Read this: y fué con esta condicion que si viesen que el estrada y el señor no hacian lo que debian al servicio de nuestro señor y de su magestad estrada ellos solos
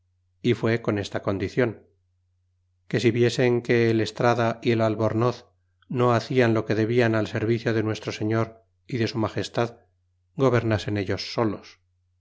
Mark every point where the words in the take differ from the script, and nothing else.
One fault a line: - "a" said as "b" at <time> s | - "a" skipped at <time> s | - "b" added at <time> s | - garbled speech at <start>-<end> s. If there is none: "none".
- "señor" said as "albornoz" at 4.8 s
- "estrada" said as "gobernasen" at 10.3 s